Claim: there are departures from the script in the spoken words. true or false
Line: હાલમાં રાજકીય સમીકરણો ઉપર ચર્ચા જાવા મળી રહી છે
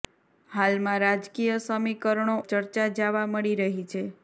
true